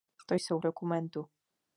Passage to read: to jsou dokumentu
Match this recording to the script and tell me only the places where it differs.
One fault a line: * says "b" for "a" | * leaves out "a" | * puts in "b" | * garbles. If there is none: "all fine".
all fine